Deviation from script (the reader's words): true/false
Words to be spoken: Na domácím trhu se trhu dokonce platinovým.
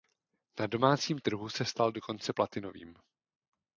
true